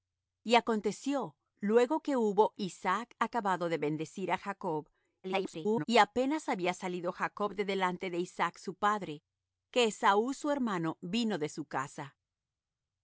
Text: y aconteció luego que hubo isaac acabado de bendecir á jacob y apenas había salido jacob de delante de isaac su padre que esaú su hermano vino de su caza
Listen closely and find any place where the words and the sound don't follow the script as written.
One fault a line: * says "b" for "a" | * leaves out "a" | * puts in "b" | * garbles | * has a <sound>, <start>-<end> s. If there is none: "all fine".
* garbles